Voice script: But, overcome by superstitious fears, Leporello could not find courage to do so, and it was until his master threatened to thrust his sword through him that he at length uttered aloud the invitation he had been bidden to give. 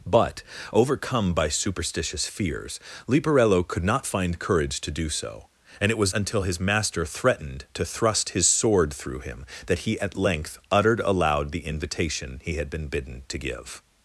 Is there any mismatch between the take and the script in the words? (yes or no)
no